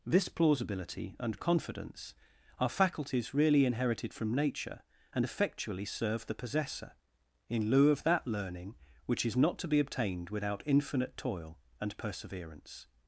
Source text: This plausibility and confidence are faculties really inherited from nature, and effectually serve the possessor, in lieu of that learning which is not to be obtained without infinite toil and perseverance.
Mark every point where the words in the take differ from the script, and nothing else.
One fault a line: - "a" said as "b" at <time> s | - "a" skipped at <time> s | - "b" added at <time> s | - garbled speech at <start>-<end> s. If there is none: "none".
none